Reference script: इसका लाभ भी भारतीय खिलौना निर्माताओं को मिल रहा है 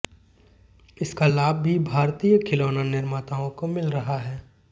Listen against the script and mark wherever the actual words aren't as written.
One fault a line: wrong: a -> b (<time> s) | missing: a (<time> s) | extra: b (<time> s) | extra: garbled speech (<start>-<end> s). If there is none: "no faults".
no faults